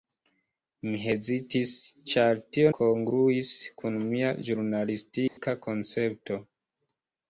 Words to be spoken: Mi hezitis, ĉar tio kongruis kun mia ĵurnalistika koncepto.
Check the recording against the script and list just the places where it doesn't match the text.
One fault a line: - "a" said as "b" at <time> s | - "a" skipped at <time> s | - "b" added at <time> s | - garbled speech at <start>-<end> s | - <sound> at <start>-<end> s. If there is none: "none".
- dropout at 5.3-5.4 s